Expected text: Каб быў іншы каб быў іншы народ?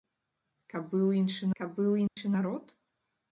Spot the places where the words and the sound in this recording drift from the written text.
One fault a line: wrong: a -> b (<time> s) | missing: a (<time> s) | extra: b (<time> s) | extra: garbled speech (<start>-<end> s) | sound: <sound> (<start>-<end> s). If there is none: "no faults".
sound: dropout (2.1-2.2 s)